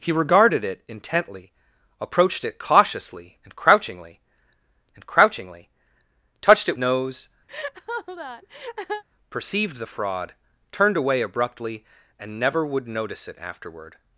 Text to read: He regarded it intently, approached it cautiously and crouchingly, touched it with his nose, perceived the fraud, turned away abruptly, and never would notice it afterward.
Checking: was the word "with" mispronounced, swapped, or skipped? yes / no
yes